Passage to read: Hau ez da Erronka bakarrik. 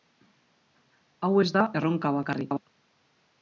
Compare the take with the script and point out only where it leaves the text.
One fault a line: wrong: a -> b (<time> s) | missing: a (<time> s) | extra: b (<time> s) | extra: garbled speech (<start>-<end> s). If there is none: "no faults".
no faults